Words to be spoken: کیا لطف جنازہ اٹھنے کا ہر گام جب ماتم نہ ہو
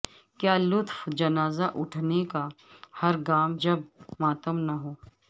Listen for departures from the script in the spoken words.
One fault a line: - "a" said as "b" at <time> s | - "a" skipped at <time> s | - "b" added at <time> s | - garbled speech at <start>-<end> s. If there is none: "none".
none